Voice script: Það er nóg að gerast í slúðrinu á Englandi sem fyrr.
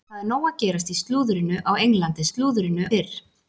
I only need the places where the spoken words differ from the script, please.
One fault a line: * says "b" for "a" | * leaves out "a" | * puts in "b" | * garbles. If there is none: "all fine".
* says "slúðrinu" for "sem"